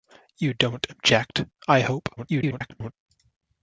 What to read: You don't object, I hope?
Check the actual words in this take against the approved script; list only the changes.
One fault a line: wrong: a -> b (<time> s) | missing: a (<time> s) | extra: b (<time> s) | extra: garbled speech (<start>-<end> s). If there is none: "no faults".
extra: garbled speech (2.2-2.9 s)